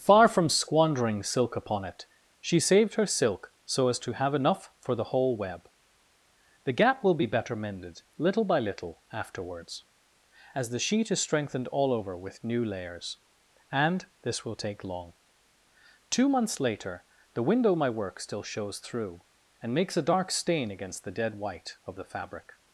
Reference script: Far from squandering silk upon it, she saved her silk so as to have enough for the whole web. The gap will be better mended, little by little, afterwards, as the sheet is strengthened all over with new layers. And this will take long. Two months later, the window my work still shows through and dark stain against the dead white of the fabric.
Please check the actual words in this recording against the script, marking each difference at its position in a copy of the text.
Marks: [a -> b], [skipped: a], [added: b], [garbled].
Far from squandering silk upon it, she saved her silk so as to have enough for the whole web. The gap will be better mended, little by little, afterwards, as the sheet is strengthened all over with new layers. And this will take long. Two months later, the window my work still shows through and [added: makes a] dark stain against the dead white of the fabric.